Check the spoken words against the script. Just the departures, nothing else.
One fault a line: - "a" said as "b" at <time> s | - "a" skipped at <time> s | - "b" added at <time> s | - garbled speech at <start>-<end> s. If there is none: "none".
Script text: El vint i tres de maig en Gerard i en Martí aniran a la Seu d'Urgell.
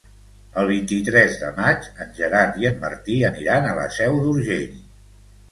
none